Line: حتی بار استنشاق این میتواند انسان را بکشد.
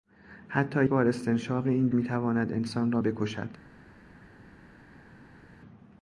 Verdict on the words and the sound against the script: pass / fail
pass